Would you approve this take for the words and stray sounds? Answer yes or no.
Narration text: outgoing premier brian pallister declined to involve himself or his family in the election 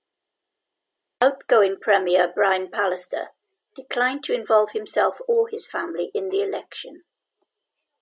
yes